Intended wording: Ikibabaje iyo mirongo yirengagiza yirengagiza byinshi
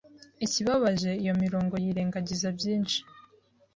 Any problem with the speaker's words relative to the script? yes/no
yes